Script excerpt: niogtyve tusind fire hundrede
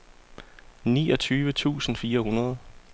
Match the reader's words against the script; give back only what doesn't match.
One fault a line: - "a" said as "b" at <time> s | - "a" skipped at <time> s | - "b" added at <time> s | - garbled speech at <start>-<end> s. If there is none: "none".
none